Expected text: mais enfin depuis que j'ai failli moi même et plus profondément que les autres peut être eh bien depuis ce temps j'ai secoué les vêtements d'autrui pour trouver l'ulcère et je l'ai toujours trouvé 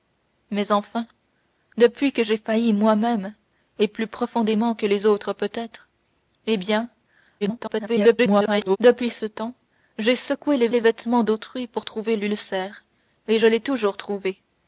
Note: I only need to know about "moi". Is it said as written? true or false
true